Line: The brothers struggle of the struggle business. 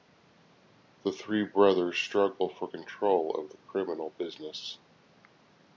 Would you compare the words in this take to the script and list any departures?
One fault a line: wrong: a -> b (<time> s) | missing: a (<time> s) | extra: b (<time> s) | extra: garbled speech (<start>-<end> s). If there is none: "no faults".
extra: three (1.1 s)
extra: for control (2.5 s)
wrong: struggle -> criminal (3.7 s)